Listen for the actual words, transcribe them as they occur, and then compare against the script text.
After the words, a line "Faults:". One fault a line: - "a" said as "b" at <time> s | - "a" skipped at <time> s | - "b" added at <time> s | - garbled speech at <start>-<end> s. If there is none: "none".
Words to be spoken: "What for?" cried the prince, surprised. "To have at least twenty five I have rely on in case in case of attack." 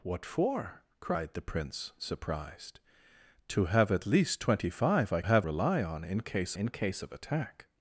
"What for?" cried the prince, surprised. "To have at least twenty five I have rely on in case in case of attack."
Faults:
none